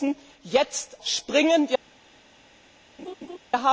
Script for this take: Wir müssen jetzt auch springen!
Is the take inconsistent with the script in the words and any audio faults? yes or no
yes